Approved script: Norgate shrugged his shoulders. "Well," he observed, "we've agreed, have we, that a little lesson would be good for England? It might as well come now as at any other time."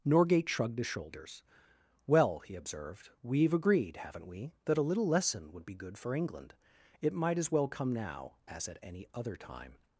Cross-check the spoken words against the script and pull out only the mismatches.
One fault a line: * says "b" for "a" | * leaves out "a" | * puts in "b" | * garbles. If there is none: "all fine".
* says "haven't" for "have"